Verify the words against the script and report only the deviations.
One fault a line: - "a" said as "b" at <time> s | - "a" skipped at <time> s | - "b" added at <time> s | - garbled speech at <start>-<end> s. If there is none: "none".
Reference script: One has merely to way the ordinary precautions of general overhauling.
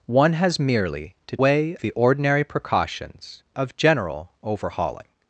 none